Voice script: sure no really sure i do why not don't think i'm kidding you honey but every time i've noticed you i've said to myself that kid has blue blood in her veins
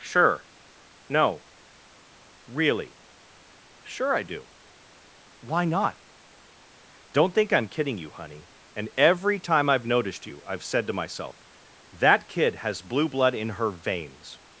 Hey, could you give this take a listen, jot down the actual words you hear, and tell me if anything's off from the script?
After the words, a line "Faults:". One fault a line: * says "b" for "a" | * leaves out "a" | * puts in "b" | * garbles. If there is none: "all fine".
sure no really sure i do why not don't think i'm kidding you honey and every time i've noticed you i've said to myself that kid has blue blood in her veins
Faults:
* says "and" for "but"